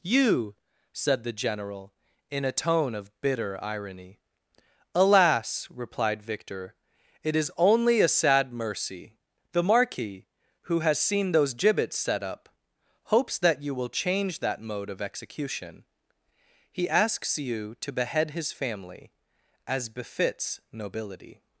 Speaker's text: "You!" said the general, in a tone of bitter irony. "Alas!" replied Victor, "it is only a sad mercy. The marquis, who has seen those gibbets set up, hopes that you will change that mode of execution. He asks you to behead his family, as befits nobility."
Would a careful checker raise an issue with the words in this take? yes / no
no